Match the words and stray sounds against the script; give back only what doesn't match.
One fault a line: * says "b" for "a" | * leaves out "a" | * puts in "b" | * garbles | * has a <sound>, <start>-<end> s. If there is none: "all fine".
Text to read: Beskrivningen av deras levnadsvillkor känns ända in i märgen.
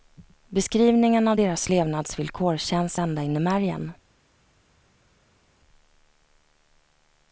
all fine